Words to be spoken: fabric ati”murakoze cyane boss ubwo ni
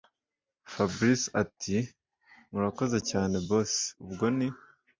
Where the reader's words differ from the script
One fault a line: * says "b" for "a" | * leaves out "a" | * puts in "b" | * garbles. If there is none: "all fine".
all fine